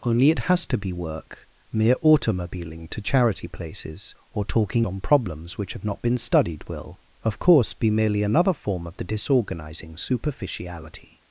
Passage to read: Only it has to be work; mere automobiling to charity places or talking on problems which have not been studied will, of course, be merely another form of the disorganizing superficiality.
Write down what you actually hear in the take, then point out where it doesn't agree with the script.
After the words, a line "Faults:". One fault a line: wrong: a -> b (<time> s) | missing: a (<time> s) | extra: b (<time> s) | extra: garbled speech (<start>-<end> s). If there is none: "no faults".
Only it has to be work; mere automobiling to charity places or talking on problems which have not been studied will, of course, be merely another form of the disorganizing superficiality.
Faults:
no faults